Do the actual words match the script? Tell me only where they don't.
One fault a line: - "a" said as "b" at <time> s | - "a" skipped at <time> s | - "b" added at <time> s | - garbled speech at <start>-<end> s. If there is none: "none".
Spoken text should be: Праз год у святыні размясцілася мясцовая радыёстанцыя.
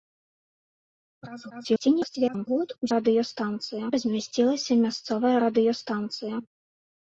- garbled speech at 1.5-2.5 s
- "святыні" said as "радыёстанцыя" at 3.0 s